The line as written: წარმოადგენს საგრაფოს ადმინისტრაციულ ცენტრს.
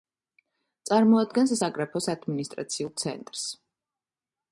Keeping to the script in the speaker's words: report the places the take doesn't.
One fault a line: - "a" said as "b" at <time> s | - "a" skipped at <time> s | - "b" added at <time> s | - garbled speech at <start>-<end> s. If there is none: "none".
none